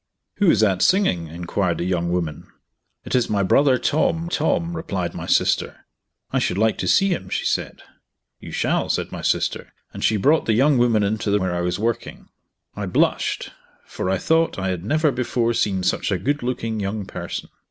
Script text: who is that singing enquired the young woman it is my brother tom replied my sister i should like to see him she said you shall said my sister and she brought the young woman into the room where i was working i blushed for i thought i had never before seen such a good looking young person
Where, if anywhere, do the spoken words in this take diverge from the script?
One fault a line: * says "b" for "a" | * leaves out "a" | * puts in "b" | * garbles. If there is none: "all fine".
* puts in "tom"
* leaves out "room"